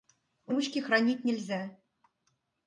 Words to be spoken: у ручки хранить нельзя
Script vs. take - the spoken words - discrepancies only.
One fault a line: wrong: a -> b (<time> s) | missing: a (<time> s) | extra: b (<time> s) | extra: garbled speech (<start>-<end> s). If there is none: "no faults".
no faults